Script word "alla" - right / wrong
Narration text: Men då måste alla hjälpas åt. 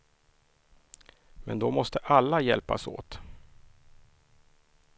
right